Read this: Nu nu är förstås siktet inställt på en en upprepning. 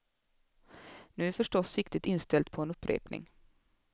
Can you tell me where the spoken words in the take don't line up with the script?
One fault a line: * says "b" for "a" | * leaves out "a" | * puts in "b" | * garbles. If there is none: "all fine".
* leaves out "nu"
* leaves out "en"